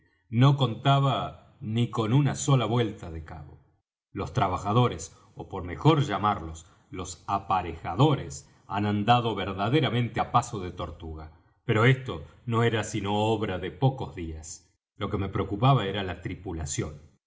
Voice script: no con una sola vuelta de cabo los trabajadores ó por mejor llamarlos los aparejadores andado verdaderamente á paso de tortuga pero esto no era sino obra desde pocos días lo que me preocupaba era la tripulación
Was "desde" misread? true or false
true